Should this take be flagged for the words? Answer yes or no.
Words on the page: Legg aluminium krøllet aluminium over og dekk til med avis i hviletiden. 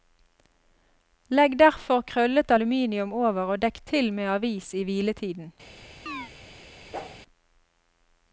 yes